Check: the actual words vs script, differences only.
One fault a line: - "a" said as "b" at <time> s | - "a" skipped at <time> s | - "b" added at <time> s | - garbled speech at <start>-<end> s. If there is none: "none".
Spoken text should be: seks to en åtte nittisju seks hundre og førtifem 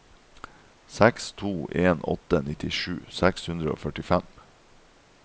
none